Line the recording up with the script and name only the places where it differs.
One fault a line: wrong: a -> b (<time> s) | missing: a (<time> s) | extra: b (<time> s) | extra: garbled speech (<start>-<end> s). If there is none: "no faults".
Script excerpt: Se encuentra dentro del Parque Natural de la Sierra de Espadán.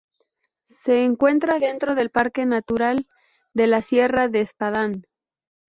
no faults